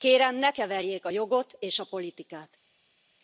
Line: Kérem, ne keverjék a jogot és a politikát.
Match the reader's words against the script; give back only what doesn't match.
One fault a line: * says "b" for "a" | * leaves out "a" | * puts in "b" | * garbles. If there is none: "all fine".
all fine